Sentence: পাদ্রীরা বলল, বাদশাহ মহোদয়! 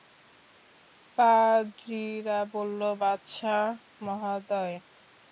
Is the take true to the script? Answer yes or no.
yes